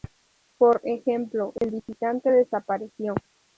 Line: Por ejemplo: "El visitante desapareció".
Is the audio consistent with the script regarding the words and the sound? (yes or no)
no